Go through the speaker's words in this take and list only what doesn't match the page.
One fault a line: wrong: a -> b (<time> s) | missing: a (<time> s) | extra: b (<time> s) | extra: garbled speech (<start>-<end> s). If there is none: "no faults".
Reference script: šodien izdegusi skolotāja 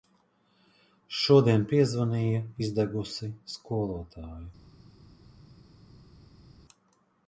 extra: piezvanīja (1.7 s)